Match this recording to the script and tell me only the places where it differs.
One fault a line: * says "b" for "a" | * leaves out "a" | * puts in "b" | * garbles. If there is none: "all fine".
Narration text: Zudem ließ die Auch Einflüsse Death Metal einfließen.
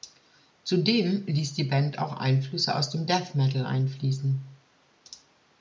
* puts in "Band"
* puts in "aus dem"